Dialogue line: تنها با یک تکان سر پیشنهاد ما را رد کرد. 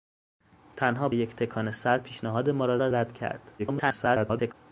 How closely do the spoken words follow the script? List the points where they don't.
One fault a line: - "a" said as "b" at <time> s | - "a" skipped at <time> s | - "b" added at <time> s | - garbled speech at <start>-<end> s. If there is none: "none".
- "با" skipped at 1.1 s
- "را" added at 2.8 s
- garbled speech at 3.6-4.5 s